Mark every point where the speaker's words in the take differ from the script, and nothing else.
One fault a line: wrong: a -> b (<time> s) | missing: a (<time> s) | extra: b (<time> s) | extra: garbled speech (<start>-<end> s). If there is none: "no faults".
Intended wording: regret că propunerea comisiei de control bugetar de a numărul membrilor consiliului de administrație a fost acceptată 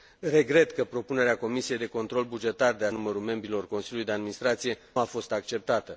no faults